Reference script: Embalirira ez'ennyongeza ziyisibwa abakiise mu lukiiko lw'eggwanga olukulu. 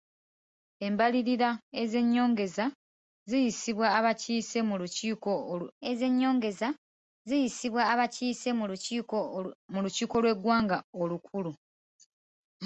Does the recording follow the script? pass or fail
fail